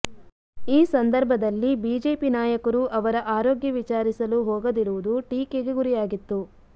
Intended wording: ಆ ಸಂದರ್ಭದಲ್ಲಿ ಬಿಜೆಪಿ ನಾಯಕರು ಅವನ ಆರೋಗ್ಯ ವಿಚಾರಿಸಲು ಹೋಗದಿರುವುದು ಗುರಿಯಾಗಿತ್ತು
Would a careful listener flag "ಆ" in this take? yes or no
yes